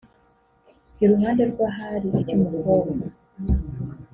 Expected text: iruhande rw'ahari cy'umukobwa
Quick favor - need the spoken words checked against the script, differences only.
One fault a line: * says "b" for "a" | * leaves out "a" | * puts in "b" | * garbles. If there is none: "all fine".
all fine